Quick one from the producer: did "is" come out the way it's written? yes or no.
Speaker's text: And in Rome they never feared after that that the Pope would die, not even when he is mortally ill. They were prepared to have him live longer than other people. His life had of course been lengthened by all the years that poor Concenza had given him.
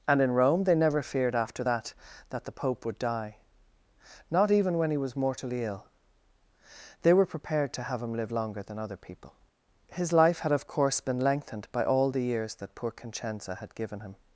no